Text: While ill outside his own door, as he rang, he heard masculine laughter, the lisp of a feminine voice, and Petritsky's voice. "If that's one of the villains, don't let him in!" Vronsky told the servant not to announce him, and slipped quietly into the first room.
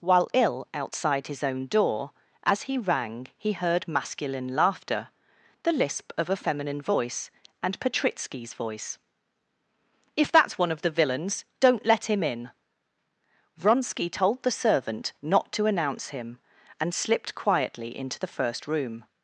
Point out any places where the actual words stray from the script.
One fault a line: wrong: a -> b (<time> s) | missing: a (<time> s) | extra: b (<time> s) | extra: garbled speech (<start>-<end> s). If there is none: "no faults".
no faults